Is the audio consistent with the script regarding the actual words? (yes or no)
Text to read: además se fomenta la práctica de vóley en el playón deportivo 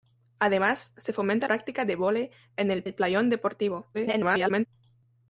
no